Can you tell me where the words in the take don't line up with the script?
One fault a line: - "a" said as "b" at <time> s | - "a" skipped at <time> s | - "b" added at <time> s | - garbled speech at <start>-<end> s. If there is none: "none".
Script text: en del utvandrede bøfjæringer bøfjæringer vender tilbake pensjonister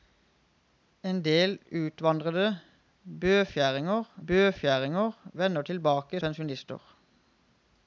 none